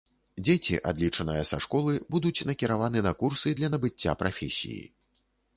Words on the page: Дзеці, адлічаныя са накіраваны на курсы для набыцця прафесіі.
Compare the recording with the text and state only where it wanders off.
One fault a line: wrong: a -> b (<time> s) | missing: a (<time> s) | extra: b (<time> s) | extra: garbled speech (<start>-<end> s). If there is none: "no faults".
extra: школы будуць (1.7 s)